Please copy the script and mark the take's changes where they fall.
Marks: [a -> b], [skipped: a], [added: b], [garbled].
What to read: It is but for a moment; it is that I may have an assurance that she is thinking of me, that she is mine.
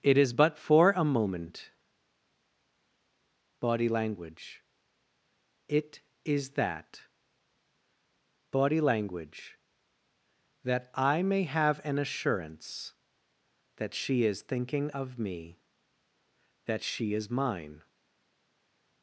It is but for a moment; [added: body language] it is that [added: body language that] I may have an assurance that she is thinking of me, that she is mine.